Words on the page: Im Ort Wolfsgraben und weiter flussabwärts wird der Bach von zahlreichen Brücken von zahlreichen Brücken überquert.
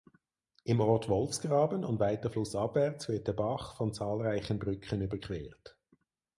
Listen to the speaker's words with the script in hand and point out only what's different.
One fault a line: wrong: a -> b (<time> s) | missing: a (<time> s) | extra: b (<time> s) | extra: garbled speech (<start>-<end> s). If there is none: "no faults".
missing: von zahlreichen Brücken (5.0 s)